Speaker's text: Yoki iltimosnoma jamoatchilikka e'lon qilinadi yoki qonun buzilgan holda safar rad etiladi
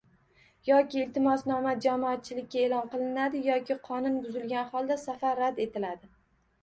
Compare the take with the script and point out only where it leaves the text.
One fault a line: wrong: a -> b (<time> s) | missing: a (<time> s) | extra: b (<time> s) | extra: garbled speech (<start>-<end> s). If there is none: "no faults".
no faults